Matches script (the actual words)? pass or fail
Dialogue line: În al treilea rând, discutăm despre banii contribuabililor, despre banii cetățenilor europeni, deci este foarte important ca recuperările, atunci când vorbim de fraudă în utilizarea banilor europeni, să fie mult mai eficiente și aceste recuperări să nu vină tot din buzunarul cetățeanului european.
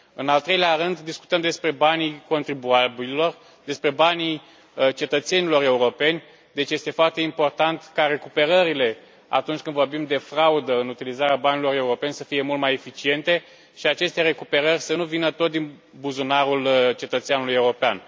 pass